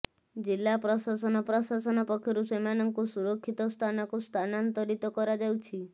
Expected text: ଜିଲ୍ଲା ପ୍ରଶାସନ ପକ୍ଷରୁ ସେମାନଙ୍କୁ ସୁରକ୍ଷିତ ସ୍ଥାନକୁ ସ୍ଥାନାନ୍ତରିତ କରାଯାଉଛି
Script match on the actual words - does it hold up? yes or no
no